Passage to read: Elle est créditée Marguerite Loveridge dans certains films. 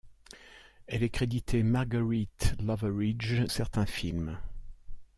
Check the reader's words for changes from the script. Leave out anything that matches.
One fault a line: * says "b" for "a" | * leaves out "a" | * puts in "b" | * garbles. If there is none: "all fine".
* leaves out "dans"